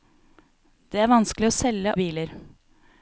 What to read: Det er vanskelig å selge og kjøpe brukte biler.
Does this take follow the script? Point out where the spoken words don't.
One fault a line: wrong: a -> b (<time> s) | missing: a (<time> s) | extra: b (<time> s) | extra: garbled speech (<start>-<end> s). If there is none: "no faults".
missing: og kjøpe brukte (1.9 s)